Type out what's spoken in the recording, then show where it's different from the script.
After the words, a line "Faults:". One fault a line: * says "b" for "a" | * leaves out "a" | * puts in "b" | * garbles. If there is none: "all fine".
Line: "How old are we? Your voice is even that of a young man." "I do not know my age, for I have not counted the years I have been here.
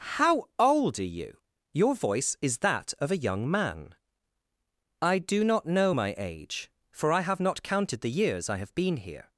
"How old are you? Your voice is that of a young man." "I do not know my age, for I have not counted the years I have been here.
Faults:
* says "you" for "we"
* leaves out "even"